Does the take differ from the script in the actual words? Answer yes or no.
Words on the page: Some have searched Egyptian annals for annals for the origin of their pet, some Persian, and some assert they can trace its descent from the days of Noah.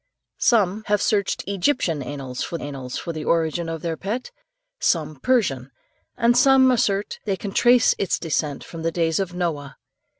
no